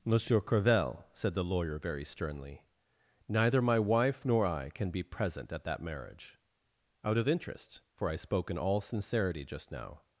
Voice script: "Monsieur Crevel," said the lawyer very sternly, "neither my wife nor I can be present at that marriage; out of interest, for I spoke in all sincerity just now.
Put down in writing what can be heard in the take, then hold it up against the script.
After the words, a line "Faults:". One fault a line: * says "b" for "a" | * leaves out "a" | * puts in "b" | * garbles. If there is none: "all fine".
"Monsieur Crevel," said the lawyer very sternly, "neither my wife nor I can be present at that marriage; out of interest, for I spoke in all sincerity just now.
Faults:
all fine